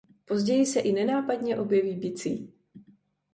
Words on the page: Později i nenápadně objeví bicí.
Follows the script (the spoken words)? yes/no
no